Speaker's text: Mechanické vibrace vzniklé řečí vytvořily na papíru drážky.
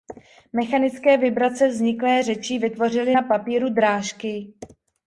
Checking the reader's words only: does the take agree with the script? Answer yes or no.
yes